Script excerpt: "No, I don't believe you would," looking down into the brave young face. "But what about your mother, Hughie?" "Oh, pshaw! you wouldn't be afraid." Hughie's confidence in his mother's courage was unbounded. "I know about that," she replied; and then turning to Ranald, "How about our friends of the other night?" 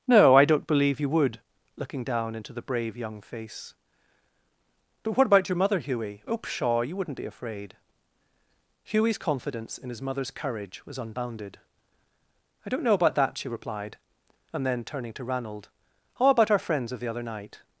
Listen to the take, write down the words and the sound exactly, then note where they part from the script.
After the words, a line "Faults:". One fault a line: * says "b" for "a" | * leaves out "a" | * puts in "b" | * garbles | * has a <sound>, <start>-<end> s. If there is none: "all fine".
"No, I don't believe you would," looking down into the brave young face. "But what about your mother, Hughie?" "Oh, pshaw! you wouldn't be afraid." Hughie's confidence in his mother's courage was unbounded. "I don't know about that," she replied; and then turning to Ranald, "How about our friends of the other night?"
Faults:
* puts in "don't"